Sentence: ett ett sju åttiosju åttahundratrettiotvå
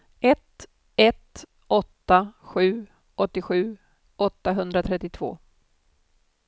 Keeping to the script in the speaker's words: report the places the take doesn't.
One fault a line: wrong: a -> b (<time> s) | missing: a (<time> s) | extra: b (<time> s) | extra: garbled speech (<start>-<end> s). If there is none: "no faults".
extra: åtta (1.7 s)